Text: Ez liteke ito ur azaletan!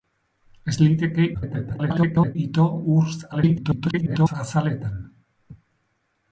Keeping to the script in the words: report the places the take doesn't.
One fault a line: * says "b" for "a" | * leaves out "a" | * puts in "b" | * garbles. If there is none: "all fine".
* garbles
* garbles